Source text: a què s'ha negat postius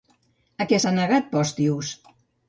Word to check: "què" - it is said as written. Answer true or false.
true